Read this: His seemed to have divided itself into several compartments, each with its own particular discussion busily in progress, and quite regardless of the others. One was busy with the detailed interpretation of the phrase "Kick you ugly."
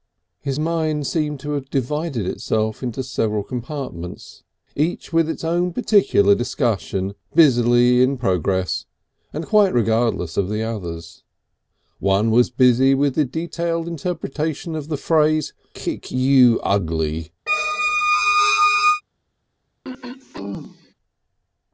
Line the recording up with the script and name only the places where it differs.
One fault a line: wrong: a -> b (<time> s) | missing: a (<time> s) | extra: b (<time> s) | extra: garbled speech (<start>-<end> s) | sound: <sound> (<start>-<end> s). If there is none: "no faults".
extra: mind (0.6 s)
sound: squeak (17.5-19.0 s)
sound: throat clearing (19.8-20.9 s)